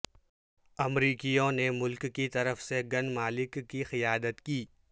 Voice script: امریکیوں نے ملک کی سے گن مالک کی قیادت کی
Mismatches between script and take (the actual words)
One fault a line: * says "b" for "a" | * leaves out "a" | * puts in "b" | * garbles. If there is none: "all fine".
* puts in "طرف"